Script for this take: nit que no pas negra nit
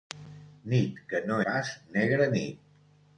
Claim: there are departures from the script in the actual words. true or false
false